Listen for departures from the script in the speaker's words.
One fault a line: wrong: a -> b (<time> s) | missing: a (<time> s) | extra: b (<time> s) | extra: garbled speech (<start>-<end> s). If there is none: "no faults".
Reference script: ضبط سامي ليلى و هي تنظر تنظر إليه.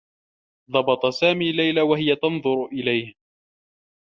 missing: تنظر (2.6 s)